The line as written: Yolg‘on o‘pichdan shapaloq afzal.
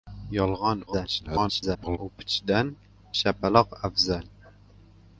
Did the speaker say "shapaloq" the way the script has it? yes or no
yes